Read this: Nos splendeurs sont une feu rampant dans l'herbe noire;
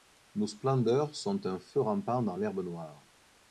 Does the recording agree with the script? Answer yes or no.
no